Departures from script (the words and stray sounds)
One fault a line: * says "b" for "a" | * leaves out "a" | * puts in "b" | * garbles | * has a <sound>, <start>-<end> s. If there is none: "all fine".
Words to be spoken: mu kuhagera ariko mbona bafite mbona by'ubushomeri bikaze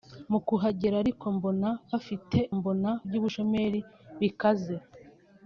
all fine